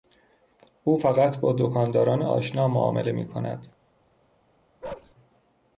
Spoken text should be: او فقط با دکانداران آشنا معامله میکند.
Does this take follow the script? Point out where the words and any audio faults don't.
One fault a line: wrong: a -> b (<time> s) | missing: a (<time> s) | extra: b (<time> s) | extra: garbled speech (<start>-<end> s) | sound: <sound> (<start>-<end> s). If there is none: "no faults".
sound: bark (4.8-5.1 s)